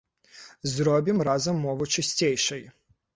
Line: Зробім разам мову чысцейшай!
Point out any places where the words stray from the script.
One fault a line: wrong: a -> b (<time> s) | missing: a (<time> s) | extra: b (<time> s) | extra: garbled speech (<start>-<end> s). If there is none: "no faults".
no faults